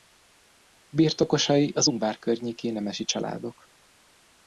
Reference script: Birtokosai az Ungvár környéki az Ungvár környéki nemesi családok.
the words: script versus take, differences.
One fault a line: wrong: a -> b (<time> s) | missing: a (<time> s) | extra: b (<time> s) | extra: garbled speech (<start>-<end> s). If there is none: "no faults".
missing: az Ungvár környéki (2.7 s)